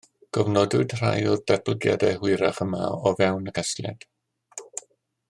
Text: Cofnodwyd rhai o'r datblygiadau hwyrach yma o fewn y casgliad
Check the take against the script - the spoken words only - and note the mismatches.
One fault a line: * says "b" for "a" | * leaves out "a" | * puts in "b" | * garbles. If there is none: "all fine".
all fine